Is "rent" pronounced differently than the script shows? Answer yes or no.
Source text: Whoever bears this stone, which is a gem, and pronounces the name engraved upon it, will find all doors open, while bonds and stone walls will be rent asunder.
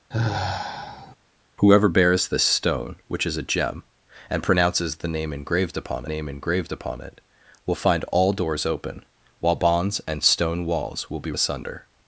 yes